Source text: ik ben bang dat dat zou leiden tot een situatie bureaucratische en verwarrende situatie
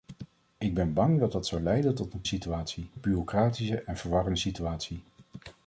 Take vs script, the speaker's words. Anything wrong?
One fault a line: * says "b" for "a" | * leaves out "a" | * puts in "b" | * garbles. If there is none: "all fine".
all fine